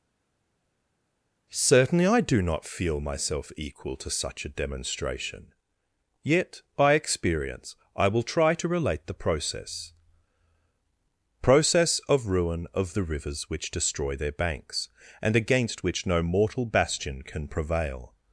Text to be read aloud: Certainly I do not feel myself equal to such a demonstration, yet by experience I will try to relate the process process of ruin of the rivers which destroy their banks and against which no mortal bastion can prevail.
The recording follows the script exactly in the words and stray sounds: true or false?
true